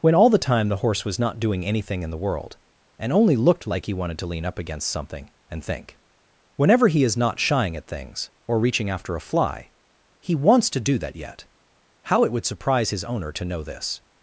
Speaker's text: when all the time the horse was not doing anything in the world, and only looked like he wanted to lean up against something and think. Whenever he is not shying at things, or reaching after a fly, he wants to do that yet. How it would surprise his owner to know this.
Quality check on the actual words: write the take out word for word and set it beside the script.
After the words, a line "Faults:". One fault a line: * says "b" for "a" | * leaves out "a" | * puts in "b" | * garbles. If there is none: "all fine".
when all the time the horse was not doing anything in the world, and only looked like he wanted to lean up against something and think. Whenever he is not shying at things, or reaching after a fly, he wants to do that yet. How it would surprise his owner to know this.
Faults:
all fine